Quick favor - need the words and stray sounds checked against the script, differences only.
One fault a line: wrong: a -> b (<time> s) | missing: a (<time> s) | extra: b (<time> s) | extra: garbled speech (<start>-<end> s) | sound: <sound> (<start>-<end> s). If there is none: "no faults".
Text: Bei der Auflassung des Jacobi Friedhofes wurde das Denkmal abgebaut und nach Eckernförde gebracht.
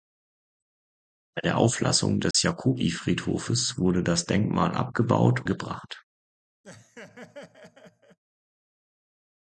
sound: dropout (2.3-2.3 s)
missing: und nach Eckernförde (5.5 s)
sound: laugh (6.6-8.2 s)